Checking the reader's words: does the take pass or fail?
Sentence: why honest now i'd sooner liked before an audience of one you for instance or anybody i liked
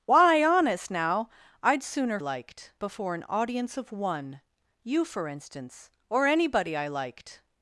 pass